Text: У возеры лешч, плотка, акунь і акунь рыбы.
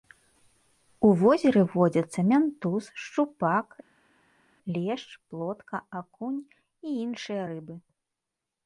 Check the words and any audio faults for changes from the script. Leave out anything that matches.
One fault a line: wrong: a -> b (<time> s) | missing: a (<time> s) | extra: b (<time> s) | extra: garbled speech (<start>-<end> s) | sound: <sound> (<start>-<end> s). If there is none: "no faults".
extra: водзяцца мянтуз шчупак (1.7 s)
wrong: акунь -> іншыя (7.0 s)